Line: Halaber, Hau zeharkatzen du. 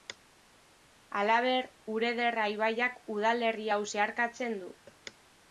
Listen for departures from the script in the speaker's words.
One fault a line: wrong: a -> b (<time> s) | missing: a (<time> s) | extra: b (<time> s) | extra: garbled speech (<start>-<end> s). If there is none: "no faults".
extra: Urederra ibaiak udalerri (2.0 s)